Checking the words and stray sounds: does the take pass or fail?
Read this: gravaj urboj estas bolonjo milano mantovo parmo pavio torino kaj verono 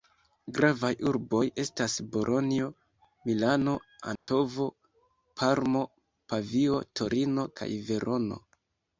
fail